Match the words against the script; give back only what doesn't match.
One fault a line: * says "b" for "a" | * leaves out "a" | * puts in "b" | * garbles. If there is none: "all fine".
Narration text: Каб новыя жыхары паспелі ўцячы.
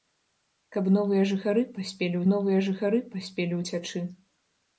* puts in "новыя жыхары паспелі"